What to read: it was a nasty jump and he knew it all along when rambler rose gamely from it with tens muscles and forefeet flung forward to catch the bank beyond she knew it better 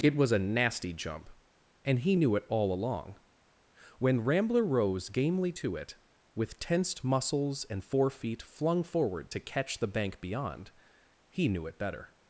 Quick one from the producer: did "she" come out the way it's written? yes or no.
no